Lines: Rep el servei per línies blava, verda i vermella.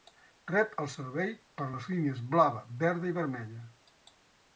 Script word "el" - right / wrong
right